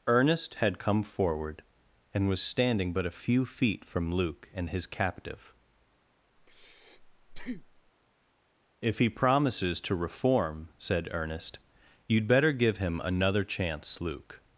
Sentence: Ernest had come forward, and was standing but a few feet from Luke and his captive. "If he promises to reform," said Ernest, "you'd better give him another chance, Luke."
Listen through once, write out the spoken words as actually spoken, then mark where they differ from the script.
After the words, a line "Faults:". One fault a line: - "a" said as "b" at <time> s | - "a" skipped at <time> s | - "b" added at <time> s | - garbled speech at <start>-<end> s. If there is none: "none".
Ernest had come forward, and was standing but a few feet from Luke and his captive. "If he promises to reform," said Ernest, "you'd better give him another chance, Luke."
Faults:
none